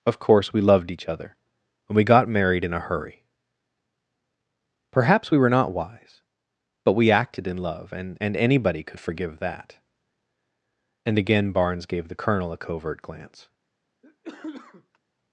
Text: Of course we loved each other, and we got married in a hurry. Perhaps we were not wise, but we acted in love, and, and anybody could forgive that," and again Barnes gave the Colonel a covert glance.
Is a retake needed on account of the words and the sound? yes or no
yes